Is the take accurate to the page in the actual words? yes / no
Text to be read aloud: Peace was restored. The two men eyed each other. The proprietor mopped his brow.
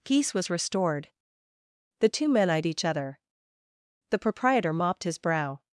yes